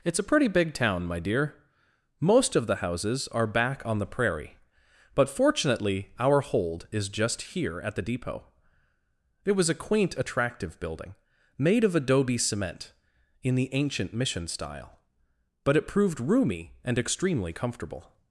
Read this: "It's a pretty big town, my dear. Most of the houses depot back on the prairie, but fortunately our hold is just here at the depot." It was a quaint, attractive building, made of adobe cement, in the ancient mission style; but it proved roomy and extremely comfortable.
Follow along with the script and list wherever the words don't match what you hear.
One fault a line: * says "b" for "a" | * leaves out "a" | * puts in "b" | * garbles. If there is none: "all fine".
* says "are" for "depot"